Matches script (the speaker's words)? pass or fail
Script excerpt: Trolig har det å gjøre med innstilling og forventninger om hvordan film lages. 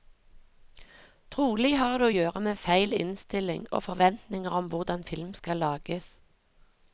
fail